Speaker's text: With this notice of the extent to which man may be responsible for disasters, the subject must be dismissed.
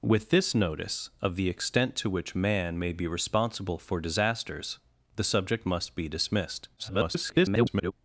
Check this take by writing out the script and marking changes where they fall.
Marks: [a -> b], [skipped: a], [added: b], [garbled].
With this notice of the extent to which man may be responsible for disasters, the subject must be dismissed. [garbled]